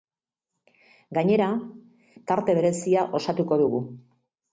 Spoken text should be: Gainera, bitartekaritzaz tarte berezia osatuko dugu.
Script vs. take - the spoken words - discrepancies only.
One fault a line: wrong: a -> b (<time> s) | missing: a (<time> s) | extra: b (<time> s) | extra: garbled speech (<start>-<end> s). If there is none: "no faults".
missing: bitartekaritzaz (1.5 s)